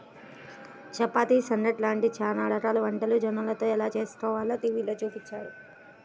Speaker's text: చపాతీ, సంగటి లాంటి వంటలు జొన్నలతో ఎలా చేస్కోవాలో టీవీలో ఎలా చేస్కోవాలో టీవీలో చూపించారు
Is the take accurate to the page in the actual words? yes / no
no